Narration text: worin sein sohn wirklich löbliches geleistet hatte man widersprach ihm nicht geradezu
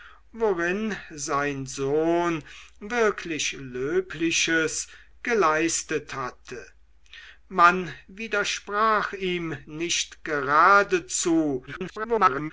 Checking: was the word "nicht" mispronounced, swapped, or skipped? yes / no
no